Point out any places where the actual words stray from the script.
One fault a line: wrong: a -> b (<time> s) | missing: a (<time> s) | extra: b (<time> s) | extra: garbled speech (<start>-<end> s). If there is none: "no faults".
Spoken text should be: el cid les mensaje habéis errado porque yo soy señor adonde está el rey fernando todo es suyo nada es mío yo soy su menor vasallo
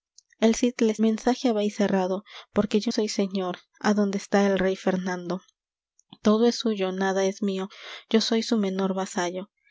no faults